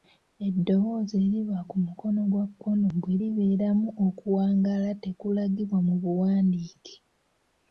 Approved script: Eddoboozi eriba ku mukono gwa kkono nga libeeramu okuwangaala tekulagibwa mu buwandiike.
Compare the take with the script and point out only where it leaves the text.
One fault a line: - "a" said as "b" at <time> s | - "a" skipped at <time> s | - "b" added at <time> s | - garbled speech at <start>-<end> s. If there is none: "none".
- "nga" said as "bwe" at 3.0 s